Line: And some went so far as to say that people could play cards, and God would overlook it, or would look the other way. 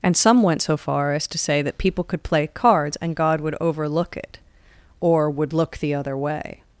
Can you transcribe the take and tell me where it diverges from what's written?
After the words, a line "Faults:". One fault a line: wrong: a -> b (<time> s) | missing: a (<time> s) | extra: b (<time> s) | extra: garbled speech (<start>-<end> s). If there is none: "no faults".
And some went so far as to say that people could play cards, and God would overlook it, or would look the other way.
Faults:
no faults